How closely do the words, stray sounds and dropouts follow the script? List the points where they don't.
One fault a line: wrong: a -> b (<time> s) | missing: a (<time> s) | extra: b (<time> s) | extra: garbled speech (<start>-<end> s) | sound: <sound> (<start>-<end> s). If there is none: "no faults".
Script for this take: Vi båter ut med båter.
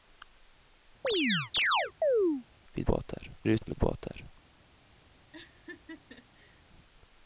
sound: chirp (1.0-2.4 s)
sound: laugh (5.3-6.6 s)